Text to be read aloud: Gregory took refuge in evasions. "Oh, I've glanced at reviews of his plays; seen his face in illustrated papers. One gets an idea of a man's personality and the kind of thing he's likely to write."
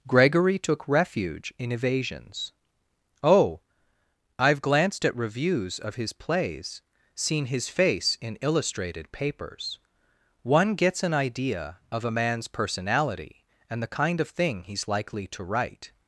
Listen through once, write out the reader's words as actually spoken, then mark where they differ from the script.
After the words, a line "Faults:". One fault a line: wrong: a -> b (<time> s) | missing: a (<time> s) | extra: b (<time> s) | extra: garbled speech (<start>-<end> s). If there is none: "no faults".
Gregory took refuge in evasions. "Oh, I've glanced at reviews of his plays; seen his face in illustrated papers. One gets an idea of a man's personality and the kind of thing he's likely to write."
Faults:
no faults